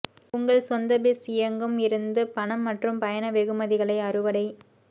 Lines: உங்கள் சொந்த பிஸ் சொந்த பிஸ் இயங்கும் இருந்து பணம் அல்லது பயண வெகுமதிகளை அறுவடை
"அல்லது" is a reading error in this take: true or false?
true